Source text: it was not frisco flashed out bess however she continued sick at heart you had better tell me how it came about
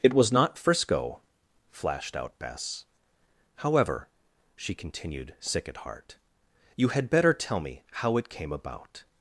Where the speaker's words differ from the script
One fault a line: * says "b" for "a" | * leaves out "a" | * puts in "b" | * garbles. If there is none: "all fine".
all fine